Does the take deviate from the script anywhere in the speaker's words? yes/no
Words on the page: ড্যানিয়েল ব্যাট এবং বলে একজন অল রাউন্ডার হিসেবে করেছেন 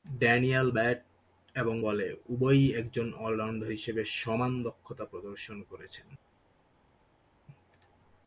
yes